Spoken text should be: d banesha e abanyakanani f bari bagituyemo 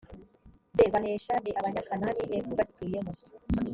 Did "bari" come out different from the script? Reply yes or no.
yes